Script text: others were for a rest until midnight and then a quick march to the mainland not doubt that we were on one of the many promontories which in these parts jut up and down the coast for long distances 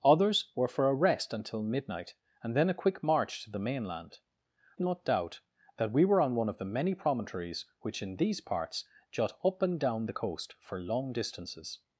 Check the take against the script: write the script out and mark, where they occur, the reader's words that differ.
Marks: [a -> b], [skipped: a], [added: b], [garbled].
others were for a rest until midnight and then a quick march to the mainland not doubt that we were on one of the many promontories which in these parts jut up and down the coast for long distances